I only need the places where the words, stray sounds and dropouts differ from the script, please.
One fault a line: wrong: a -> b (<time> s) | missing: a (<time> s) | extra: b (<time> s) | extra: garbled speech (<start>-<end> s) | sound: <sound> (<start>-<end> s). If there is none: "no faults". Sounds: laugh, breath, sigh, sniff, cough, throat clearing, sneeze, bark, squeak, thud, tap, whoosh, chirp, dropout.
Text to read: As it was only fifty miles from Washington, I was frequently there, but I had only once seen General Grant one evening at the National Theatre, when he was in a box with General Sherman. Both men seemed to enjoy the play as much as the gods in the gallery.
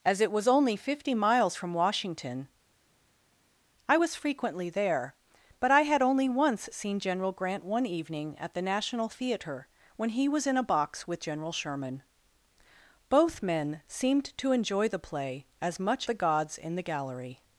missing: as (16.1 s)